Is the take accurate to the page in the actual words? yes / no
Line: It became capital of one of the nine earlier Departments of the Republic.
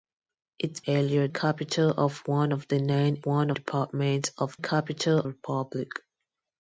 no